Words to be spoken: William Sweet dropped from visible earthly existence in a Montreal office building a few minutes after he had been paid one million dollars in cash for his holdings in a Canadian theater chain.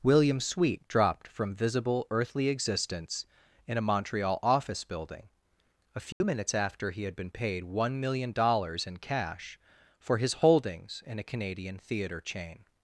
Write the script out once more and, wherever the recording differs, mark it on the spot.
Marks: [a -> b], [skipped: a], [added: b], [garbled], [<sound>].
William Sweet dropped from visible earthly existence in a Montreal office building a few [dropout] minutes after he had been paid one million dollars in cash for his holdings in a Canadian theater chain.